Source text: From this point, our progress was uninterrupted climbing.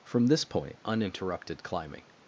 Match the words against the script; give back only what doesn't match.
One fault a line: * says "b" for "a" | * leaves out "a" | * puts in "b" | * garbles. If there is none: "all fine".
* leaves out "our progress was"